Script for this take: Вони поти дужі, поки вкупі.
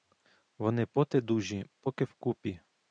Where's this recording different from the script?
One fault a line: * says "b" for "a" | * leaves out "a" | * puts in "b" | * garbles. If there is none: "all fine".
all fine